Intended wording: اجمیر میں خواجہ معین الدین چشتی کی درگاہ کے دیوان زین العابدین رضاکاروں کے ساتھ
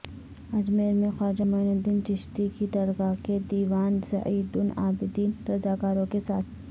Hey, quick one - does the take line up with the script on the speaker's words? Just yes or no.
yes